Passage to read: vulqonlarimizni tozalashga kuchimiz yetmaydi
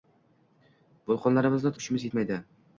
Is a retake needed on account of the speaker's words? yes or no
yes